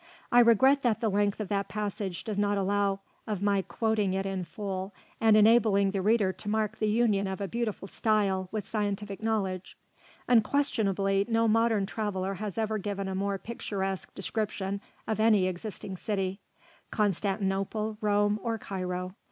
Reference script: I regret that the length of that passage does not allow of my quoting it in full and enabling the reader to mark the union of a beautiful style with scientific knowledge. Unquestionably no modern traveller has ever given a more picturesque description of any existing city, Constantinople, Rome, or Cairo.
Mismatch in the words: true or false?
false